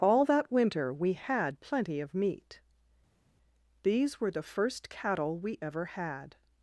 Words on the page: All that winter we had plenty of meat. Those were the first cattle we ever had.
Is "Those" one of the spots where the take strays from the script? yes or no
yes